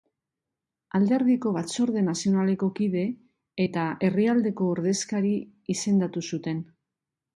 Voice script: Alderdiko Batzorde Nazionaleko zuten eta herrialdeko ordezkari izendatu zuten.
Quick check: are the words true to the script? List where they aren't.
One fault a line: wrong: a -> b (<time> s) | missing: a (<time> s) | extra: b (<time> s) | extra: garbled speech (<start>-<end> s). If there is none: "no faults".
wrong: zuten -> kide (2.8 s)